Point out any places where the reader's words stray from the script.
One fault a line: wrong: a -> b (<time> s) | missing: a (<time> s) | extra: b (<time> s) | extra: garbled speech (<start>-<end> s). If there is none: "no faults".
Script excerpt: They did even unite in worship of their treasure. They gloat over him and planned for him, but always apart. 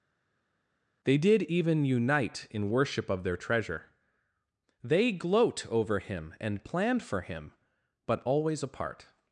no faults